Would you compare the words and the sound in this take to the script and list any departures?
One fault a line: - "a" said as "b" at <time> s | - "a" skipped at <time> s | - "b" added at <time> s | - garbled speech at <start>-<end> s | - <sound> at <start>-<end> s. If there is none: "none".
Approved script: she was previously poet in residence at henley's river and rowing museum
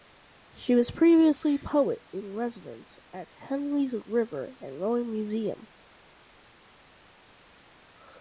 none